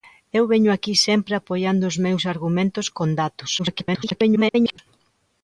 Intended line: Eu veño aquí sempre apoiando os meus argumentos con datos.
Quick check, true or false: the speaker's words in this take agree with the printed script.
false